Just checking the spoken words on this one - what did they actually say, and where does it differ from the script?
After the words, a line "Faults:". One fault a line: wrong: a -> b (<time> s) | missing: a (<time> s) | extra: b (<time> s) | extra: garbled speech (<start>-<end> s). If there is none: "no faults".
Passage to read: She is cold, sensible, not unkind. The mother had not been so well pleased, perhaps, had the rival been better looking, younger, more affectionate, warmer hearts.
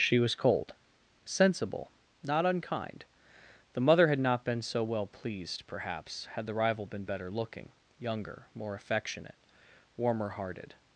She was cold, sensible, not unkind. The mother had not been so well pleased, perhaps, had the rival been better looking, younger, more affectionate, warmer hearted.
Faults:
wrong: is -> was (0.2 s)
wrong: hearts -> hearted (10.3 s)